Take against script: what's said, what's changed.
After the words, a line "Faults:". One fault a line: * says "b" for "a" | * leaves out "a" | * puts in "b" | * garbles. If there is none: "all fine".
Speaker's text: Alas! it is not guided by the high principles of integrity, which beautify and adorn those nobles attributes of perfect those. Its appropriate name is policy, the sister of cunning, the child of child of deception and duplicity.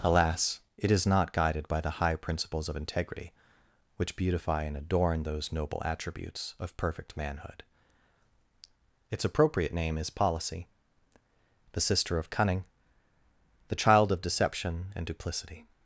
Alas! it is not guided by the high principles of integrity, which beautify and adorn those noble attributes of perfect manhood. Its appropriate name is policy, the sister of cunning, the child of deception and duplicity.
Faults:
* says "noble" for "nobles"
* says "manhood" for "those"
* leaves out "child of"